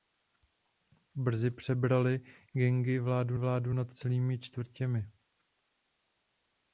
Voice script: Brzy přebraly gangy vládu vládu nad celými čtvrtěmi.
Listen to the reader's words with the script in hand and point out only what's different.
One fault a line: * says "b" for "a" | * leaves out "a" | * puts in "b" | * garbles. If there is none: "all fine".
all fine